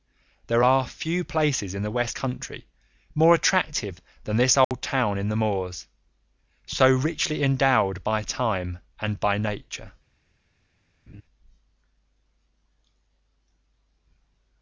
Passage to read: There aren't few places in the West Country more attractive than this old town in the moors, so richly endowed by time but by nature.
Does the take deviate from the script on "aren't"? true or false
true